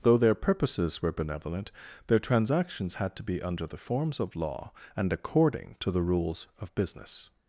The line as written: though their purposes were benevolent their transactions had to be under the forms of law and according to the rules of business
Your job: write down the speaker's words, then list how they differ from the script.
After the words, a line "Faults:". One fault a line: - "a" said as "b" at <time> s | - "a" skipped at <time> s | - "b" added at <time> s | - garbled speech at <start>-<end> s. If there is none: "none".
though their purposes were benevolent their transactions had to be under the forms of law and according to the rules of business
Faults:
none